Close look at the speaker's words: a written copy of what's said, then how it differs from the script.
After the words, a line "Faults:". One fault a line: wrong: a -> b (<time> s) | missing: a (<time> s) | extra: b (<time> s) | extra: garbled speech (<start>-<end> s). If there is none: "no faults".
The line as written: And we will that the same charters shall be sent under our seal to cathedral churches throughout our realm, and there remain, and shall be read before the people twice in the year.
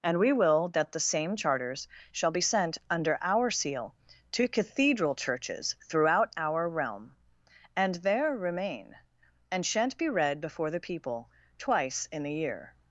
And we will that the same charters shall be sent under our seal to cathedral churches throughout our realm, and there remain, and shan't be read before the people twice in the year.
Faults:
wrong: shall -> shan't (9.7 s)